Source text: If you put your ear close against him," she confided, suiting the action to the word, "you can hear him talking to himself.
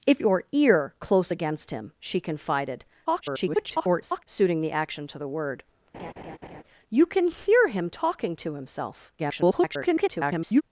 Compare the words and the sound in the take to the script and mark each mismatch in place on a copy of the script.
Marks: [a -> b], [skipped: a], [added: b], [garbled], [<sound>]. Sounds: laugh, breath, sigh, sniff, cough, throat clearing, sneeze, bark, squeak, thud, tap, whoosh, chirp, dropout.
If [skipped: you put] your ear close against him," she confided, [garbled] suiting the action to the word, [laugh] "you can hear him talking to himself. [garbled]